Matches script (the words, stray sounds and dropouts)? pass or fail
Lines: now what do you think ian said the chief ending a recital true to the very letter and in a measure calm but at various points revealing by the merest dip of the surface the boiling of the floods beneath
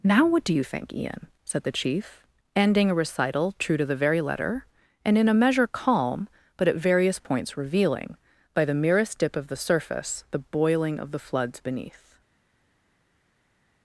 pass